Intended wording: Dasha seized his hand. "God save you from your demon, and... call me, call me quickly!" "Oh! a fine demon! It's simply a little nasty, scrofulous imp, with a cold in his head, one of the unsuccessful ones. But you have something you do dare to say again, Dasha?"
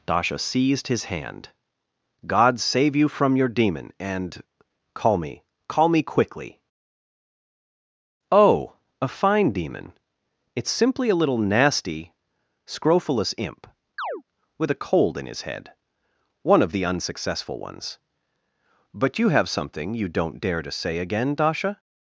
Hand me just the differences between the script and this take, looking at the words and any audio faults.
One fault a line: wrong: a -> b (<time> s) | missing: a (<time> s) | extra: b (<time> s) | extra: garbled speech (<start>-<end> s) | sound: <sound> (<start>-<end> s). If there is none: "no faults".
sound: chirp (14.0-14.2 s)
wrong: do -> don't (20.1 s)